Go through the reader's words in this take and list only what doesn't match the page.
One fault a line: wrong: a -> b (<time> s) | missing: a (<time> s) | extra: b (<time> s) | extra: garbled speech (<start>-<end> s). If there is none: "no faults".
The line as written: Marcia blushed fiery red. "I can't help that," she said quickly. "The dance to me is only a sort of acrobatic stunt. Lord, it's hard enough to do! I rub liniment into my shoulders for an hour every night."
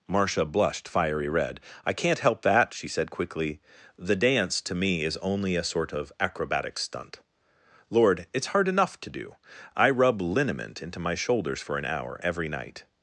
no faults